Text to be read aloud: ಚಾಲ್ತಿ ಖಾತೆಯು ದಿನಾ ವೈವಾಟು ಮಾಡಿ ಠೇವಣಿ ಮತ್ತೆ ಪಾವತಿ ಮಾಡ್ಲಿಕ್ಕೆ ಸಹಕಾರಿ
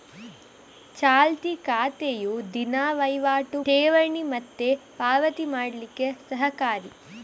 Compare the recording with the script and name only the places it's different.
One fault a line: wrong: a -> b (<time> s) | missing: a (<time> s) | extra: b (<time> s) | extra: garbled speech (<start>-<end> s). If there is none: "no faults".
missing: ಮಾಡಿ (3.6 s)